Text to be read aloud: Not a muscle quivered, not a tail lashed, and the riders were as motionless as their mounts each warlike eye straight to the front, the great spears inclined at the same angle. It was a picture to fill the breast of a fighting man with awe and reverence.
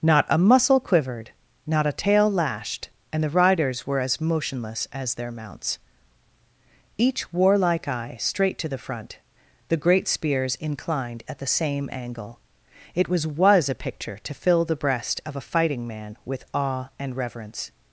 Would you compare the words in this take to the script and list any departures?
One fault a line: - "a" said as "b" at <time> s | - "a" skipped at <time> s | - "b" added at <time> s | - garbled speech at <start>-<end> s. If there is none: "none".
- "was" added at 13.2 s